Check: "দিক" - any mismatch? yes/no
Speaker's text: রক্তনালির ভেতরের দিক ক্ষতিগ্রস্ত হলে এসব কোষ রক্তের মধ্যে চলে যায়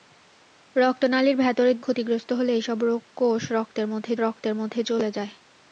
yes